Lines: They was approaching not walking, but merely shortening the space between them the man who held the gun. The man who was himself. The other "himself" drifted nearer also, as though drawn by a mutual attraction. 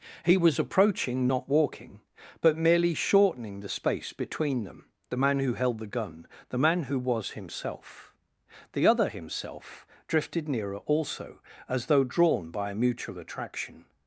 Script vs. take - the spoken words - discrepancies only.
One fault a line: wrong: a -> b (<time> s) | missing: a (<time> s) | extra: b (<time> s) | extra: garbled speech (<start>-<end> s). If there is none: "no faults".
wrong: They -> He (0.2 s)